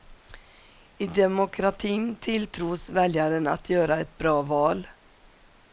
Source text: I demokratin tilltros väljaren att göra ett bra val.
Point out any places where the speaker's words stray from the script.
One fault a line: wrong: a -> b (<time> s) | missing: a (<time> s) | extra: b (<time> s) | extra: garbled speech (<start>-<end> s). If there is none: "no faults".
no faults